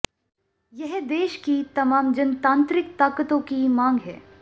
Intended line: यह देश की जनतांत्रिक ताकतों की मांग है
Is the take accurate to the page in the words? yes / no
no